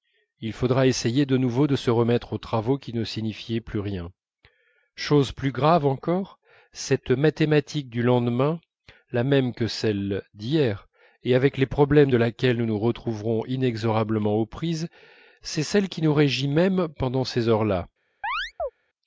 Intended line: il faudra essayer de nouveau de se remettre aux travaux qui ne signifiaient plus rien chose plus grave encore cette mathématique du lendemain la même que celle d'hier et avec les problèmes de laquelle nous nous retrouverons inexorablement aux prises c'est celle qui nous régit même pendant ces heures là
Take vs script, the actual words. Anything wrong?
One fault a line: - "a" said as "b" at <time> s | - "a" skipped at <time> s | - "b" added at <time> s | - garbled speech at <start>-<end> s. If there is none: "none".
none